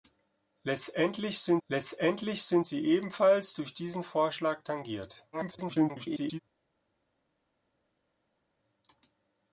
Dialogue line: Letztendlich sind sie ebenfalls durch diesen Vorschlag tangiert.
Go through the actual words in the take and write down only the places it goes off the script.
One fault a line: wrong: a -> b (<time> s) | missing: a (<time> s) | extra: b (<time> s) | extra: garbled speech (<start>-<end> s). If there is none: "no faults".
extra: letztendlich sind (1.7 s)
extra: garbled speech (5.3-6.4 s)